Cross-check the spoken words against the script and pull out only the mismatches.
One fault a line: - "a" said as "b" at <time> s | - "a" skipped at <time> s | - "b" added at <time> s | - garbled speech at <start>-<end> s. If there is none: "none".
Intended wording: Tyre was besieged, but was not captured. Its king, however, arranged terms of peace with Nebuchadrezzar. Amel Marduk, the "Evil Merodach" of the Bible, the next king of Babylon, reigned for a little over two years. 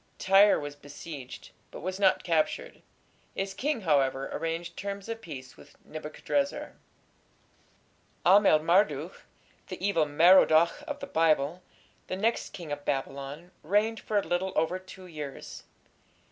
none